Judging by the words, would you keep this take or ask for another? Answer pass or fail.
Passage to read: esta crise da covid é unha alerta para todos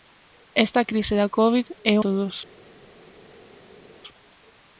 fail